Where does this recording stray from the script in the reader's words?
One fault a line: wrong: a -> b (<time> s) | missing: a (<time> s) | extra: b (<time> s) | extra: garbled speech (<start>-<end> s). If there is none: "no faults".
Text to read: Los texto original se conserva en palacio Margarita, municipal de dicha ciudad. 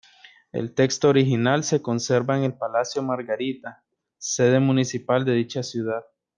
wrong: Los -> El (0.5 s)
extra: el (2.4 s)
extra: sede (4.2 s)